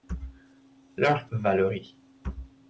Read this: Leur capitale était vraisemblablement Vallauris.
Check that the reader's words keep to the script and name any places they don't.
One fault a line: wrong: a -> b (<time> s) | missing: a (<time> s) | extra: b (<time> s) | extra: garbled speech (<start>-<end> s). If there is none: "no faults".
missing: capitale était vraisemblablement (1.3 s)